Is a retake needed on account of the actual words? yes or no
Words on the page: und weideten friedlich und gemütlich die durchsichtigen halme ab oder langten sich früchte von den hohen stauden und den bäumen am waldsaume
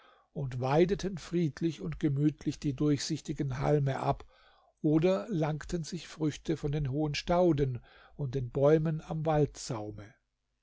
no